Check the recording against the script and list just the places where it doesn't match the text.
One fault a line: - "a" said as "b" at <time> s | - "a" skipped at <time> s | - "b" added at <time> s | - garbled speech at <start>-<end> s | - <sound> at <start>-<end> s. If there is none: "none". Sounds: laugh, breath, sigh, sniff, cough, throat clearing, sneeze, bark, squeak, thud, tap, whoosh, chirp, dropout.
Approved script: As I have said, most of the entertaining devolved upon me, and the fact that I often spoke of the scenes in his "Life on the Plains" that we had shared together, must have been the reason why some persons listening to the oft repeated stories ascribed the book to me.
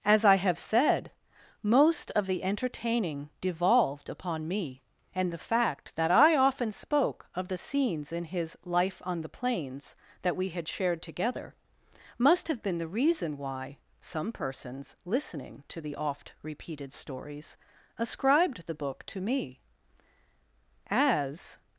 - "As" added at 20.9 s